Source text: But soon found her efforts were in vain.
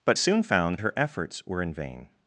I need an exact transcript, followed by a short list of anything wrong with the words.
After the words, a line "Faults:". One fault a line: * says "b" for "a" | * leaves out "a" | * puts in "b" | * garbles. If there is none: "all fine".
But soon found her efforts were in vain.
Faults:
all fine